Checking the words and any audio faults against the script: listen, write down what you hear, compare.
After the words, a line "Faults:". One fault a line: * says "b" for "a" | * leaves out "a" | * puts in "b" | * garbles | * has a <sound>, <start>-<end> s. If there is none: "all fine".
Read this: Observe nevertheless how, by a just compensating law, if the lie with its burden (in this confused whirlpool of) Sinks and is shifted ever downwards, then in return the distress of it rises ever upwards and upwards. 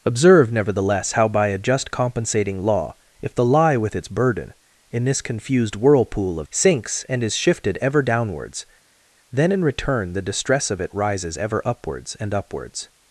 Observe nevertheless how, by a just compensating law, if the lie with its burden (in this confused whirlpool of) Sinks and is shifted ever downwards, then in return the distress of it rises ever upwards and upwards.
Faults:
all fine